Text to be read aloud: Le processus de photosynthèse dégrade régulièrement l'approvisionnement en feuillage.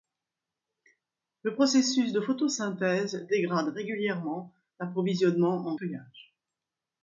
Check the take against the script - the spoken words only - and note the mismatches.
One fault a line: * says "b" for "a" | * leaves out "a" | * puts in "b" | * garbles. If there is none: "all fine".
all fine